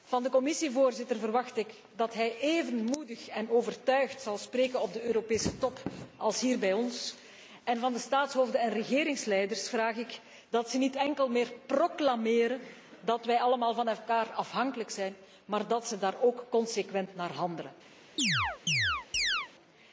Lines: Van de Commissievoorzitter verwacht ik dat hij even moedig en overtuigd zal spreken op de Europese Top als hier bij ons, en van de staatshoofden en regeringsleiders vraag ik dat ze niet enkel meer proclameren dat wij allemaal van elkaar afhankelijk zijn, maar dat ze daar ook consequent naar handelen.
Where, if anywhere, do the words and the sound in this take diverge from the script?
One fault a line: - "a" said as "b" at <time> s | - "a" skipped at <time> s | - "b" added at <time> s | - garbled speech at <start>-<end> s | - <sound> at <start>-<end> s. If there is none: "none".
- chirp at 18.2-19.5 s